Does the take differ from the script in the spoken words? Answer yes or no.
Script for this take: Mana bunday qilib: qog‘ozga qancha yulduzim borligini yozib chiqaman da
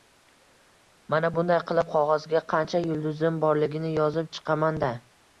no